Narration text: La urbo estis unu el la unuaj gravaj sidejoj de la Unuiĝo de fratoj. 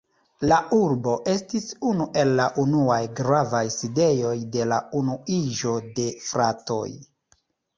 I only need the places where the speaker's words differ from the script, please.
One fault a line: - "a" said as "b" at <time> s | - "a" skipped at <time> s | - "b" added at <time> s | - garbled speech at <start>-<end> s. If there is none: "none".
none